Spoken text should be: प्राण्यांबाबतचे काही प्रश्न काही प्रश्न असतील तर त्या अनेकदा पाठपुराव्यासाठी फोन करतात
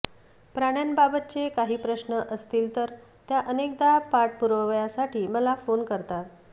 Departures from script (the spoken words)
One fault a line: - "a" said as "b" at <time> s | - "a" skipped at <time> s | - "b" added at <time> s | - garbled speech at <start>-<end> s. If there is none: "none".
- "काही प्रश्न" skipped at 2.2 s
- "मला" added at 5.3 s